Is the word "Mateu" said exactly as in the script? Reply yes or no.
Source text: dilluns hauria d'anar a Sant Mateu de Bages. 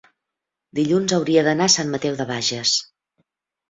yes